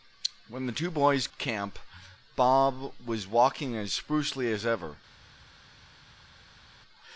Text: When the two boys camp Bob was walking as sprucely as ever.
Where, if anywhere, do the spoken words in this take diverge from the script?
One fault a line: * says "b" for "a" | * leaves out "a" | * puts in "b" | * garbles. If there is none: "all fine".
all fine